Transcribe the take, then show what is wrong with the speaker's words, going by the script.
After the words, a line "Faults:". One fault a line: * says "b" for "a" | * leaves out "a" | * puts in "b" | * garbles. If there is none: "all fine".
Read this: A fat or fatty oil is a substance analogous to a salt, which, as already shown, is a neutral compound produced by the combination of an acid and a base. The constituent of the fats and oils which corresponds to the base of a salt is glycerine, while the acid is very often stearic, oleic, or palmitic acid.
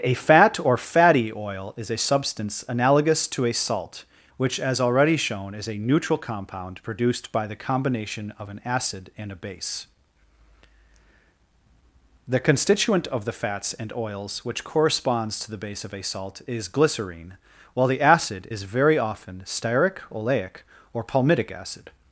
A fat or fatty oil is a substance analogous to a salt, which, as already shown, is a neutral compound produced by the combination of an acid and a base. The constituent of the fats and oils which corresponds to the base of a salt is glycerine, while the acid is very often stearic, oleic, or palmitic acid.
Faults:
all fine